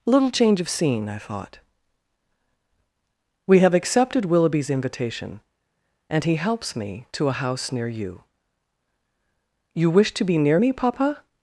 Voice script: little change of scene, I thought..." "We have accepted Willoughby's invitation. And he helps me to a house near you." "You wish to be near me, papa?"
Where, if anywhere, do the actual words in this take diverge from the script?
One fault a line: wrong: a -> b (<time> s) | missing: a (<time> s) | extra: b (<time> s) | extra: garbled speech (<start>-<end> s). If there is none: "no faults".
no faults